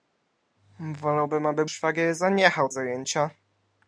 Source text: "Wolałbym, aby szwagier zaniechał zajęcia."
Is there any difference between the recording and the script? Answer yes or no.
no